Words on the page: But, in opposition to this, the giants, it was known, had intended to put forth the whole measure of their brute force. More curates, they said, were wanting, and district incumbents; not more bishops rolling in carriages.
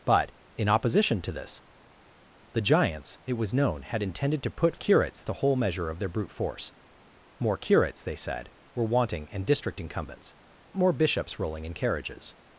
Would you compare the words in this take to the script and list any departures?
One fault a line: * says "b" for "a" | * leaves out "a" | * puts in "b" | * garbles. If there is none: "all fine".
* says "curates" for "forth"
* leaves out "not"